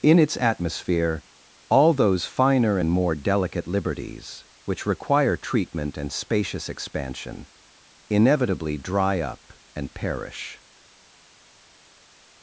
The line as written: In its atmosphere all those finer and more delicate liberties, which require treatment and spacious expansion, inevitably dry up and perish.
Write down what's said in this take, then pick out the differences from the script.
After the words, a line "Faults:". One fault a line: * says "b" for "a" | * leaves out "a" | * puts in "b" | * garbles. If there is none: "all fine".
In its atmosphere all those finer and more delicate liberties, which require treatment and spacious expansion, inevitably dry up and perish.
Faults:
all fine